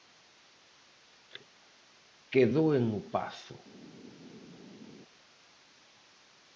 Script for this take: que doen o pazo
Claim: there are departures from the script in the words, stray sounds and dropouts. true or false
false